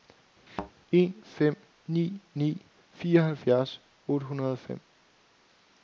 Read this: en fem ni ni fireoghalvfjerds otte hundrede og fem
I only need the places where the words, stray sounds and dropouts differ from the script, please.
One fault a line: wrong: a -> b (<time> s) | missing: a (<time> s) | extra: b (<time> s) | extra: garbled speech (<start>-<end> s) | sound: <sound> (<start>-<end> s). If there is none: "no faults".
sound: thud (0.5-0.7 s)